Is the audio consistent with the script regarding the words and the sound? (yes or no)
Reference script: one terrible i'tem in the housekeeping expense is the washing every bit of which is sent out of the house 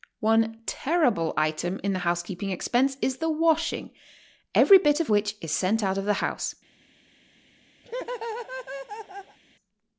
no